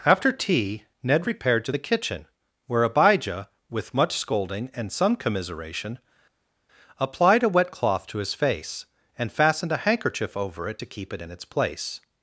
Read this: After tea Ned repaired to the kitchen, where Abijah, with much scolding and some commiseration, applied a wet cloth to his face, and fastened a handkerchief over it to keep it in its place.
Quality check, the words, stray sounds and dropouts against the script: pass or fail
pass